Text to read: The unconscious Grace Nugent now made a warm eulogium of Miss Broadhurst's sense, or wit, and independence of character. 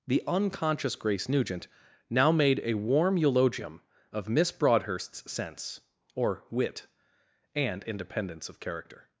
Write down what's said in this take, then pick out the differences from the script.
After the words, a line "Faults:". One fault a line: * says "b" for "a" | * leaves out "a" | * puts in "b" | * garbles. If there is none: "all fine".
The unconscious Grace Nugent now made a warm eulogium of Miss Broadhurst's sense, or wit, and independence of character.
Faults:
all fine